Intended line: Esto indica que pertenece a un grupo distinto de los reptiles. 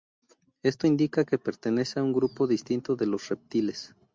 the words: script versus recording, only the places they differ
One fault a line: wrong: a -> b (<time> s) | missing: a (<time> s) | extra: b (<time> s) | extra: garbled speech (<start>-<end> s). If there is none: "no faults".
no faults